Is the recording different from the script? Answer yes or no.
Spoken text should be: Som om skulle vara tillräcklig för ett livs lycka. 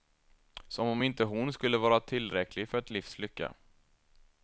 yes